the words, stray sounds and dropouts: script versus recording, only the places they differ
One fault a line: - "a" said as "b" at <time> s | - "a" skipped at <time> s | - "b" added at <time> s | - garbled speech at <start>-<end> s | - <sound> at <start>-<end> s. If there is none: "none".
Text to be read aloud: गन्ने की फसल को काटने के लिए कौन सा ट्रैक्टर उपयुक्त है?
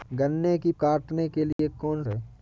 - "फसल को" skipped at 0.7 s
- dropout at 1.5-1.6 s
- "सा ट्रैक्टर उपयुक्त" skipped at 2.0 s